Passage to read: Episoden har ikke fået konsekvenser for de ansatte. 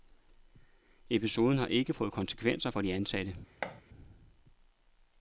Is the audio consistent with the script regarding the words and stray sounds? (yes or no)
no